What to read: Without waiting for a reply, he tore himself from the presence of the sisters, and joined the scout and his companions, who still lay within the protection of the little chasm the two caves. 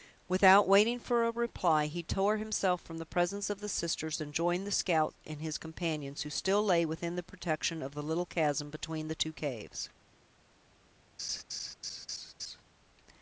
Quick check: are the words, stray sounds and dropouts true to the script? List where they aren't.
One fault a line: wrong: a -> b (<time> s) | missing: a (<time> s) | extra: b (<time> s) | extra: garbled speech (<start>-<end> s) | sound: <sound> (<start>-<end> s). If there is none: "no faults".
extra: between (8.7 s)
sound: laugh (11.2-12.6 s)